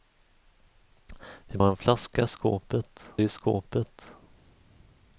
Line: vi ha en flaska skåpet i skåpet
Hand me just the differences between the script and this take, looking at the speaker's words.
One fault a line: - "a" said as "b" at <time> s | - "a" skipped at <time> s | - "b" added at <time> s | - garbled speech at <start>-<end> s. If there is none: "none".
none